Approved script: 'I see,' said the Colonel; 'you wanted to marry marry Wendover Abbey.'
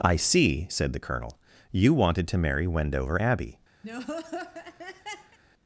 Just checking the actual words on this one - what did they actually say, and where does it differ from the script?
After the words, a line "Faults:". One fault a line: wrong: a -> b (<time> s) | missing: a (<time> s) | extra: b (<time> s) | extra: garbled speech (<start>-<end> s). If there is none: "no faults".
'I see,' said the Colonel; 'you wanted to marry Wendover Abbey.'
Faults:
missing: marry (2.6 s)